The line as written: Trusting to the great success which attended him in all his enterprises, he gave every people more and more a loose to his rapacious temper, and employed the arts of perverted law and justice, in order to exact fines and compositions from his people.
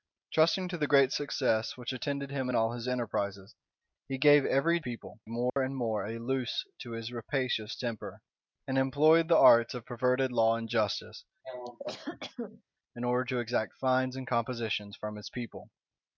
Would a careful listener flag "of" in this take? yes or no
no